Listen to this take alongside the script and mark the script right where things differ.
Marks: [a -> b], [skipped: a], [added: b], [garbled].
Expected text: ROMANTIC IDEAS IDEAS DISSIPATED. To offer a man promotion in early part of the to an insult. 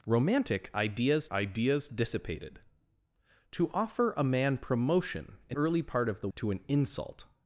ROMANTIC IDEAS IDEAS DISSIPATED. To offer a man promotion in early part of the to an insult.